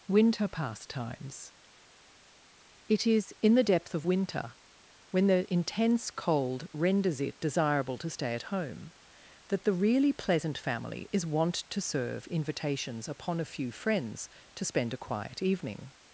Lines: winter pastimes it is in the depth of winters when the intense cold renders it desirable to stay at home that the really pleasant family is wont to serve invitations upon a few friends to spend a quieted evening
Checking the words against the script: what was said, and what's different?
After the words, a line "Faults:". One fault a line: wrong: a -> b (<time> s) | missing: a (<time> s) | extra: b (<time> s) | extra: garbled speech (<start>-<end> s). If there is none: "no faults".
winter pastimes it is in the depth of winter when the intense cold renders it desirable to stay at home that the really pleasant family is wont to serve invitations upon a few friends to spend a quiet evening
Faults:
wrong: winters -> winter (4.1 s)
wrong: quieted -> quiet (15.0 s)